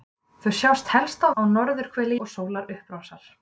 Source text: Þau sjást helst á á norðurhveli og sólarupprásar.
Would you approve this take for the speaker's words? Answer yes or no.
yes